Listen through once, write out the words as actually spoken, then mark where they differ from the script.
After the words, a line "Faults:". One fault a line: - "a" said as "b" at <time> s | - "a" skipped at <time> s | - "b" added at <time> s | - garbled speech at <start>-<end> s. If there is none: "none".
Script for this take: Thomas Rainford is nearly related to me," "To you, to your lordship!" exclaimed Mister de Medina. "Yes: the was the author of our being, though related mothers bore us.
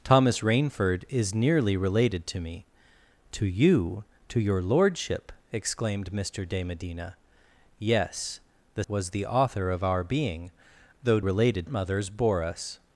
Thomas Rainford is nearly related to me," "To you, to your lordship!" exclaimed Mister de Medina. "Yes: the was the author of our being, though related mothers bore us.
Faults:
none